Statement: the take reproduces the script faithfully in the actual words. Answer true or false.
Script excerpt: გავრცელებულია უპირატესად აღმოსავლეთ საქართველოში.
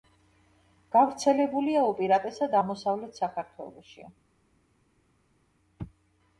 true